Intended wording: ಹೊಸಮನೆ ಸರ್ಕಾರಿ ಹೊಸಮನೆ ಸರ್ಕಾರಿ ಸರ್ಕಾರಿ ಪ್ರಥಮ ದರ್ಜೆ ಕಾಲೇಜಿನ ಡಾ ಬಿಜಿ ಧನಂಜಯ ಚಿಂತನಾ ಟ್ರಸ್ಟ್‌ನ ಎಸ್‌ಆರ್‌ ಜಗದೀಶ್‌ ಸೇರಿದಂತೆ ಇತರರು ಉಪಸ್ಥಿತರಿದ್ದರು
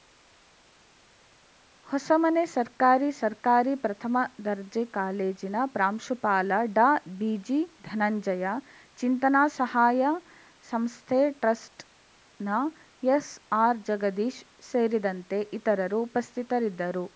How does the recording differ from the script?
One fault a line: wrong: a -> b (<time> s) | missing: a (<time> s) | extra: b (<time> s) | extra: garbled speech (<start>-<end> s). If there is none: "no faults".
missing: ಹೊಸಮನೆ (3.1 s)
missing: ಸರ್ಕಾರಿ (3.8 s)
extra: ಪ್ರಾಂಶುಪಾಲ (5.7 s)
extra: ಸಹಾಯ ಸಂಸ್ಥೆ (9.6 s)